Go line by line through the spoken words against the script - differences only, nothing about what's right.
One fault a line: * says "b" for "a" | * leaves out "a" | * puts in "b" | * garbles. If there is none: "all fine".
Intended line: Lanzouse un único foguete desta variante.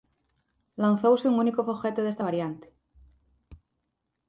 all fine